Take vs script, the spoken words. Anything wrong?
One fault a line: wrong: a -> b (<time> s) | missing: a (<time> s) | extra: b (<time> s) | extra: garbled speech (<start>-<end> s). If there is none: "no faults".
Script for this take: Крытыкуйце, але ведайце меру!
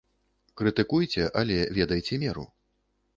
no faults